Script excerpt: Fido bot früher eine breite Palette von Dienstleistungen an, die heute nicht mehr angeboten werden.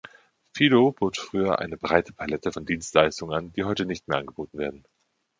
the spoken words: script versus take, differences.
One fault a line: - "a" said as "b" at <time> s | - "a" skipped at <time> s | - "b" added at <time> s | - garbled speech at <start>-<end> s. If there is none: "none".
none